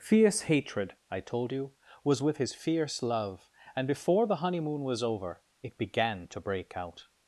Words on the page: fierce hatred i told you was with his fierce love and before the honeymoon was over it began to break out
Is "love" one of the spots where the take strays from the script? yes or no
no